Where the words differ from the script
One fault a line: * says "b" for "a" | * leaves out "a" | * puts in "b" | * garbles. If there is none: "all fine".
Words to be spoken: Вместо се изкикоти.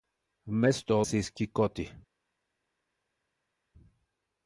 all fine